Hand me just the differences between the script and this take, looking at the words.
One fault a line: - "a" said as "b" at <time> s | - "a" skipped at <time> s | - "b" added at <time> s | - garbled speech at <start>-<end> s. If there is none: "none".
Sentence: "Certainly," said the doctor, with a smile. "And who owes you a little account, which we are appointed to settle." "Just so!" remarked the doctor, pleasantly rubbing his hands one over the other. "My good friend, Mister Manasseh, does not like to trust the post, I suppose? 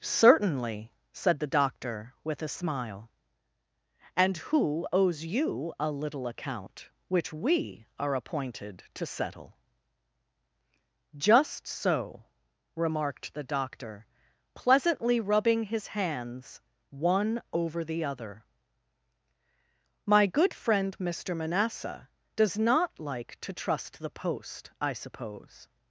none